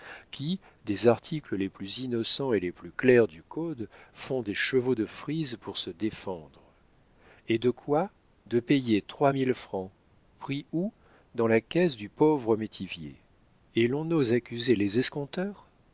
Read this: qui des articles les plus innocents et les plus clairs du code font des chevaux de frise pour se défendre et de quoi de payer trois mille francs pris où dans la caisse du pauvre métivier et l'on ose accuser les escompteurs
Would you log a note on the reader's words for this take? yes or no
no